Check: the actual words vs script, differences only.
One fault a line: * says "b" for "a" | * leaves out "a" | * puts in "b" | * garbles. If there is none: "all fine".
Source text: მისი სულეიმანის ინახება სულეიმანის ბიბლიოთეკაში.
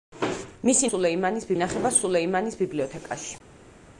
all fine